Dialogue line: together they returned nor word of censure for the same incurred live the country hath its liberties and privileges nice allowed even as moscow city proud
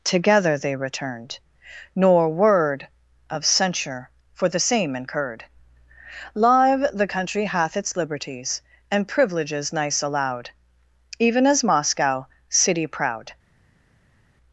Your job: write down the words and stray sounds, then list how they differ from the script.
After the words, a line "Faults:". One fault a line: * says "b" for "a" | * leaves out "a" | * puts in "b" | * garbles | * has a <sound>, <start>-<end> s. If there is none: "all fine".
together they returned nor word of censure for the same incurred live the country hath its liberties and privileges nice allowed even as moscow city proud
Faults:
all fine